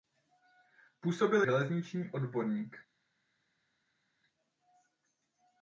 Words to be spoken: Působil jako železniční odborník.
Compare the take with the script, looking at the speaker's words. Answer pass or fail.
fail